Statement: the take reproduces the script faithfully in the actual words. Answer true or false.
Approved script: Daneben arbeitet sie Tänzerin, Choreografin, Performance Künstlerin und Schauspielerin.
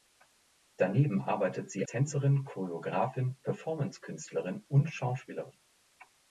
true